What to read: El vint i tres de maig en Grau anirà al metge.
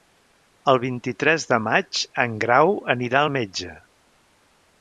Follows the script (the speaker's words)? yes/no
yes